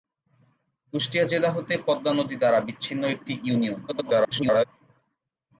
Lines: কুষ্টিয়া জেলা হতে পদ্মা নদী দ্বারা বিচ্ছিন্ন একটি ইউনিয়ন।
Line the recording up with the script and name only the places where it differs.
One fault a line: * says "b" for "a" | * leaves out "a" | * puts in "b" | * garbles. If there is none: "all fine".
* garbles